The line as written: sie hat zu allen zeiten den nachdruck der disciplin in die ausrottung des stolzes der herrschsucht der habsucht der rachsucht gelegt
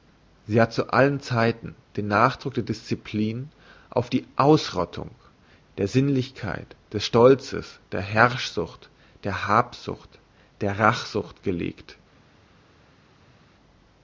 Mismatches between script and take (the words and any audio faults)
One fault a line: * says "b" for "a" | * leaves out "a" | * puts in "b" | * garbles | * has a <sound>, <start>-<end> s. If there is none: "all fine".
* says "auf" for "in"
* puts in "der sinnlichkeit"